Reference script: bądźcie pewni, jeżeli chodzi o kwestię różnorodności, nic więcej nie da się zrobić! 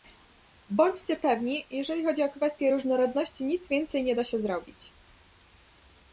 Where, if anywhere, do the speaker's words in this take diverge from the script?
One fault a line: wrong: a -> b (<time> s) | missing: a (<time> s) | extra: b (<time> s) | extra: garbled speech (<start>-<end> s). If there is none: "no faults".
no faults